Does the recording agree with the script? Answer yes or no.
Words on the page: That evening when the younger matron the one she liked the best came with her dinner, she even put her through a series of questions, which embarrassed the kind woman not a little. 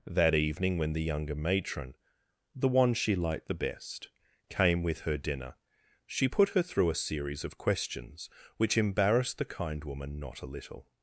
no